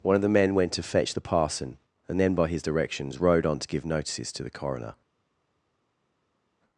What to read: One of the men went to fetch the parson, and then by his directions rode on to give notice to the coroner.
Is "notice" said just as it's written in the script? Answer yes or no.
no